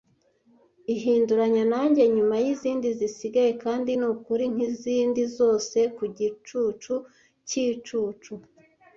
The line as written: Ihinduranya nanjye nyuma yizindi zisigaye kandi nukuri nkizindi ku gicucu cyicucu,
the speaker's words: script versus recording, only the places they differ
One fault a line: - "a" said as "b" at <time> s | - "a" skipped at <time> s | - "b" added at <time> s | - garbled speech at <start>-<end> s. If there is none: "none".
- "zose" added at 5.4 s